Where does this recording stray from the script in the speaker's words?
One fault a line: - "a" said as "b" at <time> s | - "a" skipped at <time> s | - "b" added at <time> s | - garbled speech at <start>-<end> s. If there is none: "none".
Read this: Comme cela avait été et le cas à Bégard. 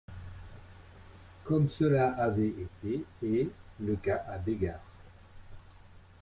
none